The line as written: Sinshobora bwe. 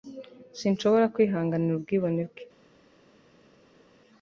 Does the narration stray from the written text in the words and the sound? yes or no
yes